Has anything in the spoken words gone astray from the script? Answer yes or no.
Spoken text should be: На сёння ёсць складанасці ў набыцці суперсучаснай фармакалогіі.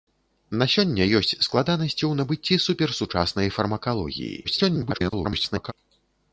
yes